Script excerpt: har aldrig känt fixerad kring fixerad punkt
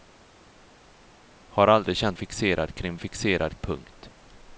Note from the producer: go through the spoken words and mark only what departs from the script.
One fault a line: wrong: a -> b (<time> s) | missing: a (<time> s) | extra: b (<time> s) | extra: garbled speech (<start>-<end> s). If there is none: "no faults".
no faults